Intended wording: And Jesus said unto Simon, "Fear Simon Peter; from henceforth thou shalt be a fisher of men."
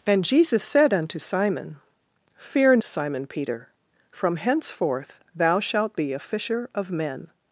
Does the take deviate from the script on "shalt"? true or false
false